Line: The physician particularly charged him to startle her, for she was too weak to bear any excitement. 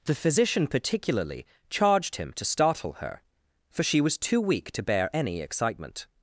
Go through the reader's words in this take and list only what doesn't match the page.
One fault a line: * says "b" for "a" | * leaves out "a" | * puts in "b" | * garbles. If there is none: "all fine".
all fine